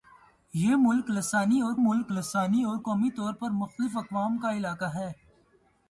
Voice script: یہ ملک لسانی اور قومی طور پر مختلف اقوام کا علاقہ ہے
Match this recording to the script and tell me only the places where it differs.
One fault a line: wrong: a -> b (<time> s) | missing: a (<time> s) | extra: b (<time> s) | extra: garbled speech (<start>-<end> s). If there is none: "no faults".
extra: ملک لسانی اور (1.8 s)